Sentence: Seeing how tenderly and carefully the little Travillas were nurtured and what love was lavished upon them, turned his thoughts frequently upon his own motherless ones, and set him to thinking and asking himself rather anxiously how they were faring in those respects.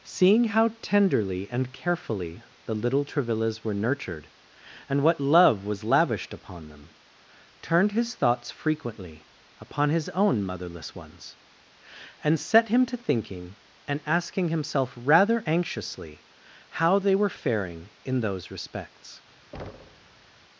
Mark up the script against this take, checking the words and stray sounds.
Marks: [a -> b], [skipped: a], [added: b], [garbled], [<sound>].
Seeing how tenderly and carefully the little Travillas were nurtured and what love was lavished upon them, turned his thoughts frequently upon his own motherless ones, and set him to thinking and asking himself rather anxiously how they were faring in those respects. [thud]